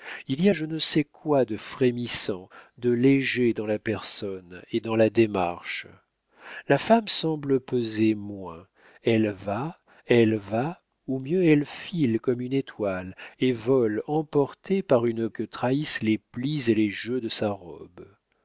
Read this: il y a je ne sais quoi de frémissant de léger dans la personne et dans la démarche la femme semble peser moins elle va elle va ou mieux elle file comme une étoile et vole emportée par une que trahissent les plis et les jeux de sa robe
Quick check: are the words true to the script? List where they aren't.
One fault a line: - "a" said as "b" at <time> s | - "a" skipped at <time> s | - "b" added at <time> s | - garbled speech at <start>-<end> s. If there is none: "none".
none